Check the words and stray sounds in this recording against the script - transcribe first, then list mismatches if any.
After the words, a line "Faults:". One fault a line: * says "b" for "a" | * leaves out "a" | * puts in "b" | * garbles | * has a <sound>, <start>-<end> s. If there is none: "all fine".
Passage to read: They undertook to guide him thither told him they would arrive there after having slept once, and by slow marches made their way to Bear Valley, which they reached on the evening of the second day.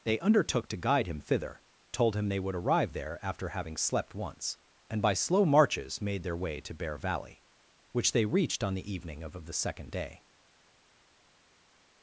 They undertook to guide him thither told him they would arrive there after having slept once, and by slow marches made their way to Bear Valley, which they reached on the evening of of the second day.
Faults:
* puts in "of"